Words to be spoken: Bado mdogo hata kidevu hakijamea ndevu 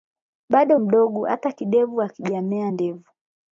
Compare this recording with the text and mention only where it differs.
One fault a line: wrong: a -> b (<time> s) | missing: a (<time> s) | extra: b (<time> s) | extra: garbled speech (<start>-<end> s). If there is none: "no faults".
no faults